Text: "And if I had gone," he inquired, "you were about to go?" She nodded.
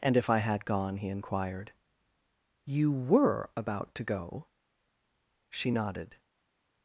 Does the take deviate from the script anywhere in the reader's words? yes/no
no